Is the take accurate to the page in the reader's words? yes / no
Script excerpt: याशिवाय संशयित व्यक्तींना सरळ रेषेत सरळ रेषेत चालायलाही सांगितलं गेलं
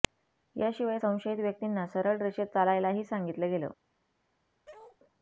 no